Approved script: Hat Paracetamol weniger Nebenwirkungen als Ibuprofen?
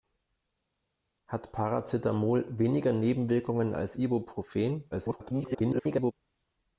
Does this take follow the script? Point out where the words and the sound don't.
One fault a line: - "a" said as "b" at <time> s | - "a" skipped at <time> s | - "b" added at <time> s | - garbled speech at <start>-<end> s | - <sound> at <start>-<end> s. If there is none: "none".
- garbled speech at 4.9-6.1 s